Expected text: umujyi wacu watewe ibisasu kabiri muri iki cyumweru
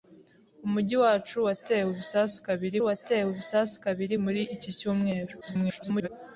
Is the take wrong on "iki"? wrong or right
right